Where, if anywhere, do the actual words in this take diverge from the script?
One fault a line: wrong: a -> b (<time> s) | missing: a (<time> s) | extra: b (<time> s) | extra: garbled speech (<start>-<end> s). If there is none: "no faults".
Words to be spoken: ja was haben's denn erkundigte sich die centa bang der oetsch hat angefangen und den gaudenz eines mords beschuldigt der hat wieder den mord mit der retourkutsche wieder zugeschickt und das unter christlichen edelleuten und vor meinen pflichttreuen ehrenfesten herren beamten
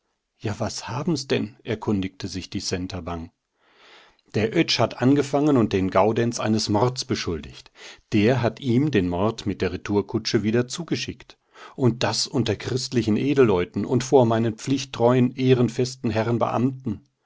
wrong: wieder -> ihm (8.6 s)